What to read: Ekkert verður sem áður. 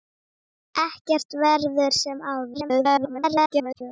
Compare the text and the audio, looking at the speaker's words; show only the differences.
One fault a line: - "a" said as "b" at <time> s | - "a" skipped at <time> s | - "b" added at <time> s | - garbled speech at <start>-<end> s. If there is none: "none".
- garbled speech at 2.5-3.8 s